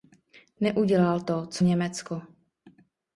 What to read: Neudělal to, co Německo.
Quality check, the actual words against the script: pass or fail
pass